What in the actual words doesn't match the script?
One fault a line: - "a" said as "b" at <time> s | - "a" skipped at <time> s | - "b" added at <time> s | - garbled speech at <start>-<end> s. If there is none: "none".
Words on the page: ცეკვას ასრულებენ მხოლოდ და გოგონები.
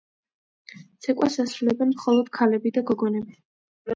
- "ქალები" added at 2.4 s